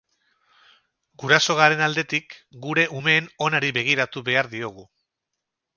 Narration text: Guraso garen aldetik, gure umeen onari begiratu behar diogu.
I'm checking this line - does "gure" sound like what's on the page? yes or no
yes